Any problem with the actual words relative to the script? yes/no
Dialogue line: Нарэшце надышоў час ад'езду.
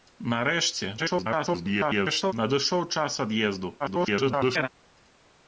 yes